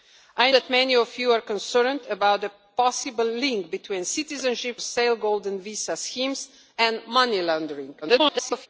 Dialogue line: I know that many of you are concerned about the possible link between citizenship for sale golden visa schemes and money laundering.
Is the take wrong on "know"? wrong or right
wrong